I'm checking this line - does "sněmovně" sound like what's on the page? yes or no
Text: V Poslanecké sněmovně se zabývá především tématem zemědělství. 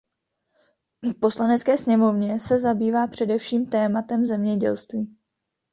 yes